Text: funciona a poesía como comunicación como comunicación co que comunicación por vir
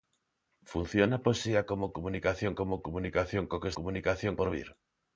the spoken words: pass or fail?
pass